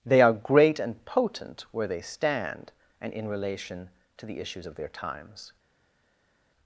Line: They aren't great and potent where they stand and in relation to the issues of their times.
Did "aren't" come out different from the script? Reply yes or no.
yes